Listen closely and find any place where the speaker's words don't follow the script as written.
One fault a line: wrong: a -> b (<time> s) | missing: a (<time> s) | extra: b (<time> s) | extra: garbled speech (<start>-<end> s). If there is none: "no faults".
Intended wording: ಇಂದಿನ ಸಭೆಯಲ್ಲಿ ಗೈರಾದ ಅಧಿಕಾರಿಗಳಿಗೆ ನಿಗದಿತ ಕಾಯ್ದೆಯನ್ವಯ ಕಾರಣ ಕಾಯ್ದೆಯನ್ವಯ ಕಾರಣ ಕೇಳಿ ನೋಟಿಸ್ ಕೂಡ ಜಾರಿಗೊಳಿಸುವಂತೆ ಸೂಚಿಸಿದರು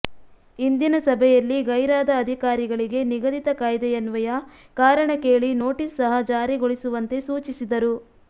missing: ಕಾಯ್ದೆಯನ್ವಯ ಕಾರಣ (5.1 s)
wrong: ಕೂಡ -> ಸಹ (6.0 s)